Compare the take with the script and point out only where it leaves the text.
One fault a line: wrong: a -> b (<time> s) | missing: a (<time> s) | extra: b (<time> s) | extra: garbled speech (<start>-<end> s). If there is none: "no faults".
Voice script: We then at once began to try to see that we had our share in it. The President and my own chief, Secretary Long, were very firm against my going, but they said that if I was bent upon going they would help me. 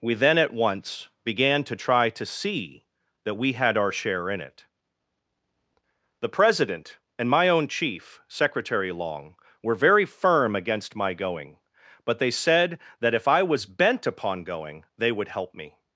no faults